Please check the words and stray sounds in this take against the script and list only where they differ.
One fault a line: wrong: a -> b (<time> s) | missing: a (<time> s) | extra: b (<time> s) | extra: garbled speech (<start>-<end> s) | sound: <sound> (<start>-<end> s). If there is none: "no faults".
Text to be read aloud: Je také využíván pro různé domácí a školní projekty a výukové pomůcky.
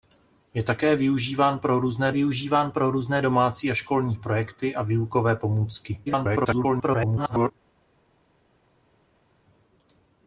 extra: využíván pro různé (2.1 s)
extra: garbled speech (6.1-7.5 s)